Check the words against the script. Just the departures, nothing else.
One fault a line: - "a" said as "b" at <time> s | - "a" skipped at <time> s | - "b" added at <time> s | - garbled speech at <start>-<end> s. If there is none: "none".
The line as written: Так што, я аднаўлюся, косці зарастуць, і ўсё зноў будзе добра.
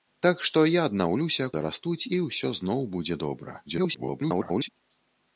- "косці" skipped at 1.5 s
- garbled speech at 3.7-4.7 s